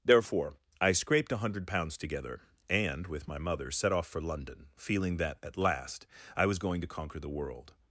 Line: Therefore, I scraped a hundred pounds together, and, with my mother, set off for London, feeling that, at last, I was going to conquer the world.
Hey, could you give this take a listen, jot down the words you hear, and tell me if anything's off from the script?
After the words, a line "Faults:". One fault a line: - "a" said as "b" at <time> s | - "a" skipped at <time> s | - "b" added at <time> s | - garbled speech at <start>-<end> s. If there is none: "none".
Therefore, I scraped a hundred pounds together, and, with my mother, set off for London, feeling that, at last, I was going to conquer the world.
Faults:
none